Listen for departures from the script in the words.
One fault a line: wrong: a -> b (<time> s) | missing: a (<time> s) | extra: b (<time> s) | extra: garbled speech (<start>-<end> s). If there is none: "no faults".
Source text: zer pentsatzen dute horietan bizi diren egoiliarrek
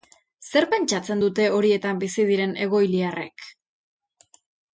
no faults